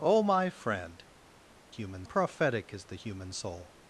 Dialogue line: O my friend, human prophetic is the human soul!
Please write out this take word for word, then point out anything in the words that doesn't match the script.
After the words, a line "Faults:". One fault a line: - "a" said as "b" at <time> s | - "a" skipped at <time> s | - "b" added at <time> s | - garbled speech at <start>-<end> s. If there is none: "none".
O my friend, human prophetic is the human soul!
Faults:
none